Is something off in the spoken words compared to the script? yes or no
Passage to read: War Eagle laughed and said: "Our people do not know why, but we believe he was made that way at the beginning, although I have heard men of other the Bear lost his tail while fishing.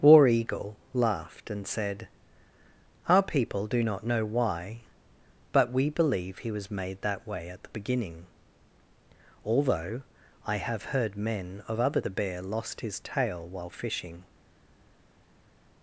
no